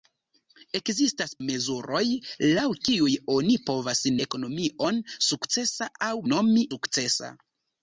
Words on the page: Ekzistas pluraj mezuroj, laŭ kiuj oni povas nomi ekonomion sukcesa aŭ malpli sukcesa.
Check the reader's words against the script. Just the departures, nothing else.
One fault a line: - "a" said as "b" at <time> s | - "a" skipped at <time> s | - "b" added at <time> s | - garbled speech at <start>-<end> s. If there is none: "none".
- "pluraj" skipped at 1.3 s
- "nomi" skipped at 4.0 s
- "malpli" said as "nomi" at 6.3 s